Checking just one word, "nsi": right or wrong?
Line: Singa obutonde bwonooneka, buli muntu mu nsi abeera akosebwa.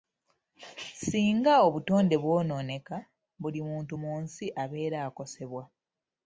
right